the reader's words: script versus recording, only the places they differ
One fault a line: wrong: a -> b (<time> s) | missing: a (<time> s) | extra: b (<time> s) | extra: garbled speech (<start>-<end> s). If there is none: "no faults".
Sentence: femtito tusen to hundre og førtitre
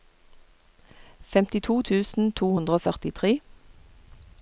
no faults